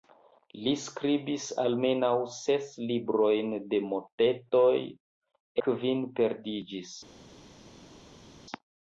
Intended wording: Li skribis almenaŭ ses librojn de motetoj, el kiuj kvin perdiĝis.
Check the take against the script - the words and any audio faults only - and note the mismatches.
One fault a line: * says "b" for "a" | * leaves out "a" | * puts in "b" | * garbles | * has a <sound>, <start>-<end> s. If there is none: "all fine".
* leaves out "el kiuj"